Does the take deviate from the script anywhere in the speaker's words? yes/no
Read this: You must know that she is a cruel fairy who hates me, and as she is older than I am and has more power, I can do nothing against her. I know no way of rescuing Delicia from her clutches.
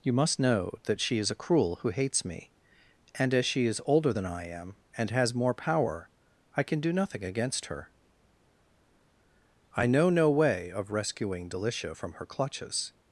yes